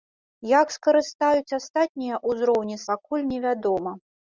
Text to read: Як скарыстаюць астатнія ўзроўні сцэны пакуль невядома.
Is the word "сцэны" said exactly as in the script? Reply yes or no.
no